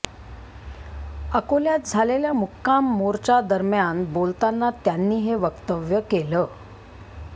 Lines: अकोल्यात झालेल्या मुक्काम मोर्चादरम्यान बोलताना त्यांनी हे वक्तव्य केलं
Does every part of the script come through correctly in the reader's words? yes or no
yes